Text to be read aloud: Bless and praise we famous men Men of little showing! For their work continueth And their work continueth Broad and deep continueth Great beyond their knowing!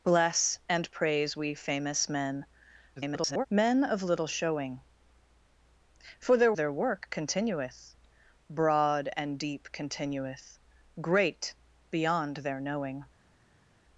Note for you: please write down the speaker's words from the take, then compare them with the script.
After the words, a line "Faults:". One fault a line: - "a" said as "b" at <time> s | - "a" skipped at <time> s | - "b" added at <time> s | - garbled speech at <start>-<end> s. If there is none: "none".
Bless and praise we famous men [garbled] Men of little showing! For their their work continueth Broad and deep continueth Great beyond their knowing!
Faults:
- garbled speech at 3.0-3.5 s
- "work continueth And" skipped at 6.5 s